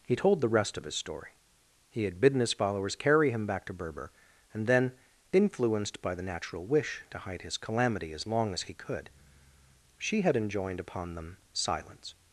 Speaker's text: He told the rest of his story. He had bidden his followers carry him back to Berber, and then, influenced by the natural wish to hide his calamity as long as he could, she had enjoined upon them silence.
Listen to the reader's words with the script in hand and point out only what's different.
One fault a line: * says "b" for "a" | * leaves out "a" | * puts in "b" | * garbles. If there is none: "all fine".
all fine